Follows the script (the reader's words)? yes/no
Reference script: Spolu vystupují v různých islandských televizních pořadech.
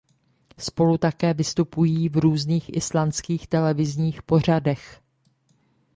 no